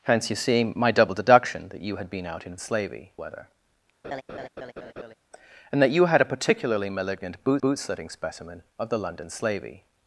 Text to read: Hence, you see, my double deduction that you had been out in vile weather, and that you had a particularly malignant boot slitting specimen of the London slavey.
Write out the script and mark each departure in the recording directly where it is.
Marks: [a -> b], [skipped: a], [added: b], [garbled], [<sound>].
Hence, you see, my double deduction that you had been out in [vile -> slavey] weather, [laugh] and that you had a particularly malignant boot [added: boot] slitting specimen of the London slavey.